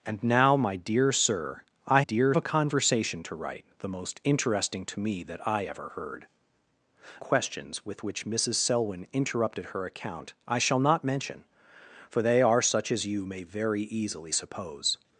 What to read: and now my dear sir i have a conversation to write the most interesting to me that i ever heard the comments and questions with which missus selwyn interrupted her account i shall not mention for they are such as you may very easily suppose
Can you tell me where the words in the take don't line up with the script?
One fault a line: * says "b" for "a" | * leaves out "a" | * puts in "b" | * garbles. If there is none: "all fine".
* says "dear" for "have"
* leaves out "the comments and"